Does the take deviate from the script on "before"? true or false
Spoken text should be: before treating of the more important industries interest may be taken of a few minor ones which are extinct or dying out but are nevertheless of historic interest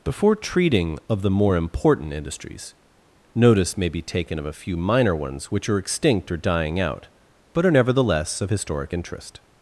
false